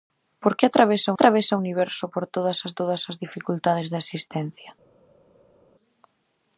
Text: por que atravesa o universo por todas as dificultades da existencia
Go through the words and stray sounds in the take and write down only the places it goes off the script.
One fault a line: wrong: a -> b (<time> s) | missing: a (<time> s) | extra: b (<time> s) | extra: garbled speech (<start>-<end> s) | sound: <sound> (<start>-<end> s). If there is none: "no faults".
extra: atravesa (1.1 s)
extra: todas as (2.8 s)